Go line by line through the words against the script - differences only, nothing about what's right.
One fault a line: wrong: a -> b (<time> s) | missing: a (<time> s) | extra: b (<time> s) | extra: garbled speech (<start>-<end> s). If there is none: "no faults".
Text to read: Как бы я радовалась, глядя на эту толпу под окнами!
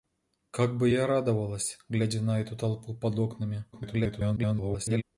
extra: garbled speech (3.7-5.0 s)